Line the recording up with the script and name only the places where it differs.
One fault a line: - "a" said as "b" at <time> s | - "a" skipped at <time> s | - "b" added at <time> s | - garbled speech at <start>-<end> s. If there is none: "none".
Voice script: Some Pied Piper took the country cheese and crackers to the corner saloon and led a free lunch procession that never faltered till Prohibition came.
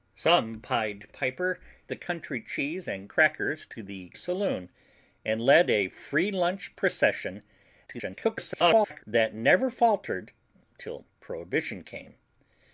- "took" skipped at 1.6 s
- "corner" skipped at 4.1 s
- garbled speech at 7.9-9.0 s